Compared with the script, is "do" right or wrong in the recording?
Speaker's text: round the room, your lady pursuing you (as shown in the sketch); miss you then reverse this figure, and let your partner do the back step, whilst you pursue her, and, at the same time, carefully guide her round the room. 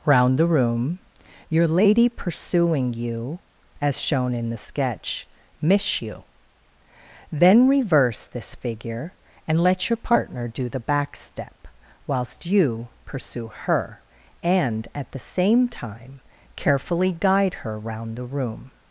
right